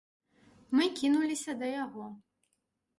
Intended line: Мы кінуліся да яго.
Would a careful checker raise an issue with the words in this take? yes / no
no